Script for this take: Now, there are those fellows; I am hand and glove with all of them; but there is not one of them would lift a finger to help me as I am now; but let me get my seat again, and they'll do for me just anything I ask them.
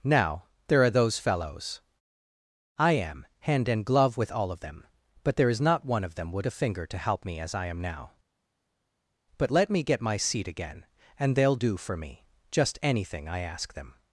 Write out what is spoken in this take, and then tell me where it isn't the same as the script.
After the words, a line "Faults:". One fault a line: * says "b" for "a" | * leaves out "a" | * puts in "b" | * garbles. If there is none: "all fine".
Now, there are those fellows; I am hand and glove with all of them; but there is not one of them would a finger to help me as I am now; but let me get my seat again, and they'll do for me just anything I ask them.
Faults:
* leaves out "lift"